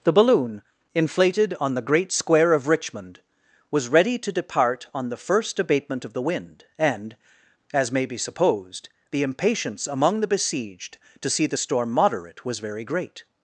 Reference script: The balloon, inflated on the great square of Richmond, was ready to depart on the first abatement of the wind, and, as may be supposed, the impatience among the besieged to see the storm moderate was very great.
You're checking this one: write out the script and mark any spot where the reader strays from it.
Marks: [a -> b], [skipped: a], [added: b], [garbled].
The balloon, inflated on the great square of Richmond, was ready to depart on the first abatement of the wind, and, as may be supposed, the impatience among the besieged to see the storm moderate was very great.